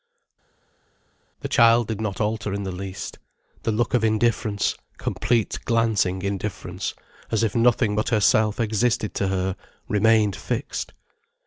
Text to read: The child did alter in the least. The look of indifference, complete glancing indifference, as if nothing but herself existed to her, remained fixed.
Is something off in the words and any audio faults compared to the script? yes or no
yes